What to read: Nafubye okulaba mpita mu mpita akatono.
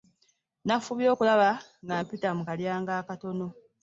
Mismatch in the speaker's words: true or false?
true